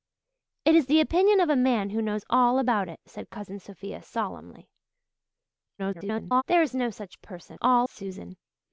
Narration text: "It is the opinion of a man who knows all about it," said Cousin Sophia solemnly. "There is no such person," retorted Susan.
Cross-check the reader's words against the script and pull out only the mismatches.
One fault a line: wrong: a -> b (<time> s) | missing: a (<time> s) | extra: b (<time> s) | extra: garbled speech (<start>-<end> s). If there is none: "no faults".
extra: garbled speech (5.8-6.4 s)
wrong: retorted -> all (7.6 s)